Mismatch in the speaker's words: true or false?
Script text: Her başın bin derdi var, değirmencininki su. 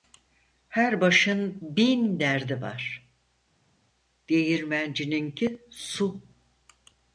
false